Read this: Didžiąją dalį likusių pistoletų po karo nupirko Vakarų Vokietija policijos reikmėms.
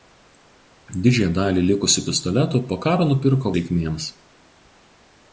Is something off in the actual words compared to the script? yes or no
yes